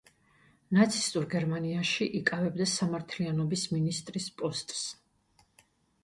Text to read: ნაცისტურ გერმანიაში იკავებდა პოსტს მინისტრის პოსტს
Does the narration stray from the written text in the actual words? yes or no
yes